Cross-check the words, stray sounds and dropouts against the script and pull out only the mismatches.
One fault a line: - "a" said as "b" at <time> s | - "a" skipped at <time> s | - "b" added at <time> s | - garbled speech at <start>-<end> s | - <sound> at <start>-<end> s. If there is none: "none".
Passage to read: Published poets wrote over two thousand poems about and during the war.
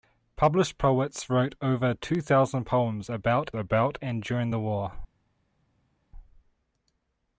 - "about" added at 3.5 s